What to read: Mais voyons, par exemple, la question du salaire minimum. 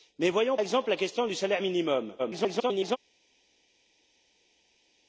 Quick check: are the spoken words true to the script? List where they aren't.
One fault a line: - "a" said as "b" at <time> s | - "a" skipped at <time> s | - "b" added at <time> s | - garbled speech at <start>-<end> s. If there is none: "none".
- "par" skipped at 0.6 s
- garbled speech at 2.2-3.0 s